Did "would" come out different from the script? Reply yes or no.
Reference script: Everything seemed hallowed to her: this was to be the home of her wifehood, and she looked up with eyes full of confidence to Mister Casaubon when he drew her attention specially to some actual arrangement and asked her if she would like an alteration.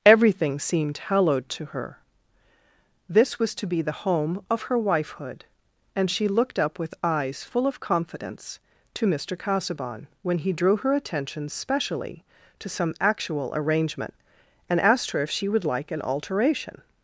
no